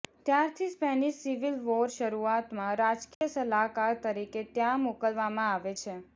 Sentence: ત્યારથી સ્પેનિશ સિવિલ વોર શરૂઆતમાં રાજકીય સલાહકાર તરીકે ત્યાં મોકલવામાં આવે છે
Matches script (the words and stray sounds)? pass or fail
fail